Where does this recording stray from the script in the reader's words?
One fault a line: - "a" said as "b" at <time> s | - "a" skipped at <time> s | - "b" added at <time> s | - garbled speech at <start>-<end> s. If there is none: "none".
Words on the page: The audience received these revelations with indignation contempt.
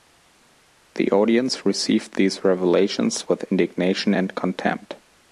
- "and" added at 4.1 s